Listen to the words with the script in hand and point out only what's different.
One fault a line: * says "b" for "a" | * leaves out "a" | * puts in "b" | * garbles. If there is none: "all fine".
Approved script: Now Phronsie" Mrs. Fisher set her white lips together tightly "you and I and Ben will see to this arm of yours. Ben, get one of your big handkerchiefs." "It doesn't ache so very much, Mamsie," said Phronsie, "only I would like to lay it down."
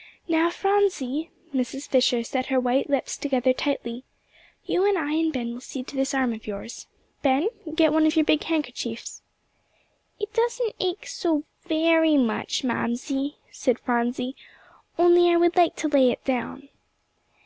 all fine